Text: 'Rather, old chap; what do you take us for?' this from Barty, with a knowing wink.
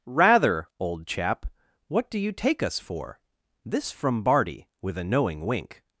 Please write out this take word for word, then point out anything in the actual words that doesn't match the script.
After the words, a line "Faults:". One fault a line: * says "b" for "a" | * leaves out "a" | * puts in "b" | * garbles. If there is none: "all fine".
'Rather, old chap; what do you take us for?' this from Barty, with a knowing wink.
Faults:
all fine